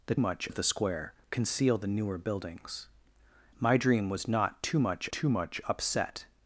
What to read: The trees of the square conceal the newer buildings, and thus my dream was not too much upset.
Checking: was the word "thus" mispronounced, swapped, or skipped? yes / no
yes